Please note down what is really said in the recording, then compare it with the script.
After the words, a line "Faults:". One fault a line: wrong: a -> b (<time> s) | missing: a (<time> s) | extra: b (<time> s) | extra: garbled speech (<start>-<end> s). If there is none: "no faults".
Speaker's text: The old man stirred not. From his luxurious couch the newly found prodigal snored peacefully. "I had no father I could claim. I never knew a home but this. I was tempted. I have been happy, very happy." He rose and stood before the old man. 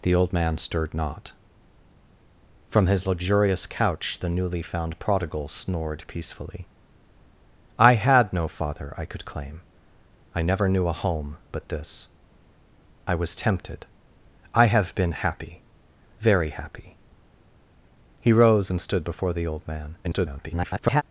The old man stirred not. From his luxurious couch the newly found prodigal snored peacefully. "I had no father I could claim. I never knew a home but this. I was tempted. I have been happy, very happy." He rose and stood before the old man. [garbled]
Faults:
extra: garbled speech (20.0-21.0 s)